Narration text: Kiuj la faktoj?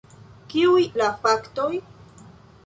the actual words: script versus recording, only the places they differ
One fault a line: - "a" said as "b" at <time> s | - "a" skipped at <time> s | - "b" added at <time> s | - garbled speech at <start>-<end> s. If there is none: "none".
none